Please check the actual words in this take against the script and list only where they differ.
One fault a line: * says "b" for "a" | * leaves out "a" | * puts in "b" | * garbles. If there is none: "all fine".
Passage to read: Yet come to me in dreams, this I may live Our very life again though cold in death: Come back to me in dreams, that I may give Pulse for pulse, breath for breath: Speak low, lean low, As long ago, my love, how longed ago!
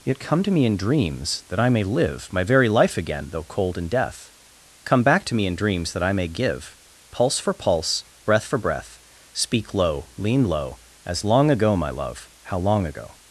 * says "that" for "this"
* says "My" for "Our"
* says "long" for "longed"